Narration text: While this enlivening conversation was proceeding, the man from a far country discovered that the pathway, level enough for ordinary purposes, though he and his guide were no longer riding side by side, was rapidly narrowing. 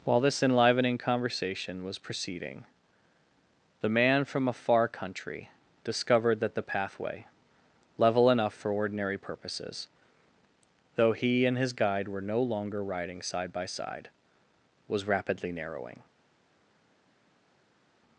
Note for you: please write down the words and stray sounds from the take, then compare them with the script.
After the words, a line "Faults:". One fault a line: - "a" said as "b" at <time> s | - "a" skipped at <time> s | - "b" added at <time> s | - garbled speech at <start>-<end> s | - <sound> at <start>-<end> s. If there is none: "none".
While this enlivening conversation was proceeding, the man from a far country discovered that the pathway, level enough for ordinary purposes, though he and his guide were no longer riding side by side, was rapidly narrowing.
Faults:
none